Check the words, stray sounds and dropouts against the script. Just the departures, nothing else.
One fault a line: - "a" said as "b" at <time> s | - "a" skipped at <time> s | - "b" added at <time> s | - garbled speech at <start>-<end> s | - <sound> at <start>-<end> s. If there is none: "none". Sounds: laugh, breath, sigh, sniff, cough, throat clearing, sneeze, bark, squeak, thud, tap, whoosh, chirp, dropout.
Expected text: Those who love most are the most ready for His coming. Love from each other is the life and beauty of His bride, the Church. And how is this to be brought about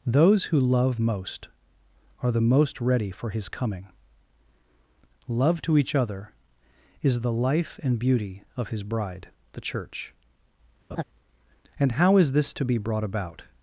- "from" said as "to" at 5.6 s
- laugh at 10.9-11.0 s